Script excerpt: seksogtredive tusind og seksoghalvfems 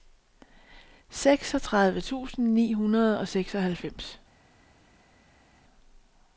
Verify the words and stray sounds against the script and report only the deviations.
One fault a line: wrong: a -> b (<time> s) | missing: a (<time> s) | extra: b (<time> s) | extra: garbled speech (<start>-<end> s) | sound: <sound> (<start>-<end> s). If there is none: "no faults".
extra: ni hundrede (2.5 s)